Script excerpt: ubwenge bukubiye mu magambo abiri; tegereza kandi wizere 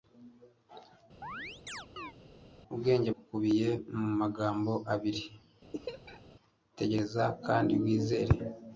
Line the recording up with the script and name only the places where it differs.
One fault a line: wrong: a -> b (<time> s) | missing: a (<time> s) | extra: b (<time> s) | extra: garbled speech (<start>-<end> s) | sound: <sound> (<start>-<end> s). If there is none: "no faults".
sound: chirp (1.2-2.1 s)
sound: laugh (5.7-6.4 s)